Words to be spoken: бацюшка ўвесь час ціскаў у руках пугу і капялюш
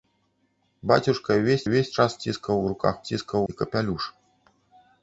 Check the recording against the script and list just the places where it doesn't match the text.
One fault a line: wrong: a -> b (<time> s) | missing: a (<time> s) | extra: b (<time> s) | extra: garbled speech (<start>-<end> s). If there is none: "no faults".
extra: ўвесь (1.6 s)
wrong: пугу -> ціскаў (3.1 s)